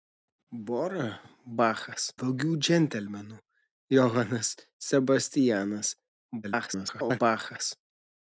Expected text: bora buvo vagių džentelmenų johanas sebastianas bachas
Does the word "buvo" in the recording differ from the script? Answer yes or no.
yes